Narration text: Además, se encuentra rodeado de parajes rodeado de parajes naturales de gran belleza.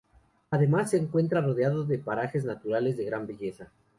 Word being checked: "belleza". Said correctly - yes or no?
yes